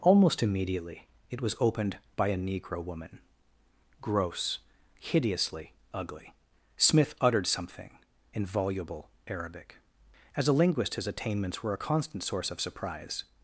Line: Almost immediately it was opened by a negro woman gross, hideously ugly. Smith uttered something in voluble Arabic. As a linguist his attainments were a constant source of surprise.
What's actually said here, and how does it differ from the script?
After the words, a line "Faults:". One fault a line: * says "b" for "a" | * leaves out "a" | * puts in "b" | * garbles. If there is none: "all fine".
Almost immediately it was opened by a negro woman gross, hideously ugly. Smith uttered something in voluble Arabic. As a linguist his attainments were a constant source of surprise.
Faults:
all fine